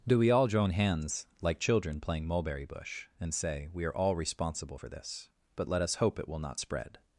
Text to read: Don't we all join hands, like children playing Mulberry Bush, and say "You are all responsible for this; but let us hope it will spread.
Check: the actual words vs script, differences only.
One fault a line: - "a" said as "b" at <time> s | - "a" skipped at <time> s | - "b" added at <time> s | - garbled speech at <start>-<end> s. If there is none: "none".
- "Don't" said as "Do" at 0.1 s
- "You" said as "We" at 3.7 s
- "not" added at 6.4 s